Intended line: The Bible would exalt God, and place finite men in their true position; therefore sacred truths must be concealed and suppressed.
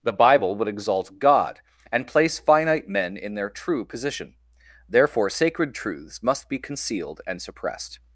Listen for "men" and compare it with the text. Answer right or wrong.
right